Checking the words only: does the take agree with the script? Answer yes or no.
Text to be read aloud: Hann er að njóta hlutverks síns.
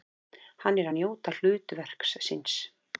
yes